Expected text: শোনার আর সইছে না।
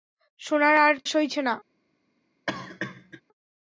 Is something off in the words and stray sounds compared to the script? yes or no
yes